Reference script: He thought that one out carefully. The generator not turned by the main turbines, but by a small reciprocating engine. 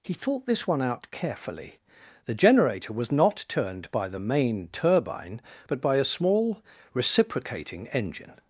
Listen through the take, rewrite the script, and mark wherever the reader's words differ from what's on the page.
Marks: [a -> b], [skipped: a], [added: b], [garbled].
He thought [that -> this] one out carefully. The generator [added: was] not turned by the main [turbines, -> turbine] but by a small reciprocating engine.